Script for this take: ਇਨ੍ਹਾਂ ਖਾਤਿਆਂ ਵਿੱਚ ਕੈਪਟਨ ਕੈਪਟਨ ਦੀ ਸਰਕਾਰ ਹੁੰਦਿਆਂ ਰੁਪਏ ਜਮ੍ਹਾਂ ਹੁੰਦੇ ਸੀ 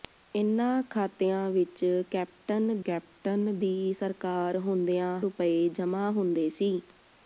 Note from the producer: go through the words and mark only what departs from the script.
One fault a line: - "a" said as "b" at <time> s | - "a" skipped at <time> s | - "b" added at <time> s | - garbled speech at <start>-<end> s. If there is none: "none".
none